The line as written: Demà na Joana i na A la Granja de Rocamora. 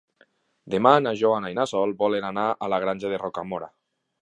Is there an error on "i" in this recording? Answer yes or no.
no